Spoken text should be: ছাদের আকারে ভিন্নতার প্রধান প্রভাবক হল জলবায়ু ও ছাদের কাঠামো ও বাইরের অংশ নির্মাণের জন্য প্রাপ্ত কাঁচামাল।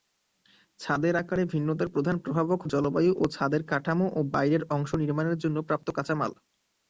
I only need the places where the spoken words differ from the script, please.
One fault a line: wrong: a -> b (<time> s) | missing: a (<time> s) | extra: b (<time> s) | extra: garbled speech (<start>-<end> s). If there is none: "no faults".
missing: হল (2.6 s)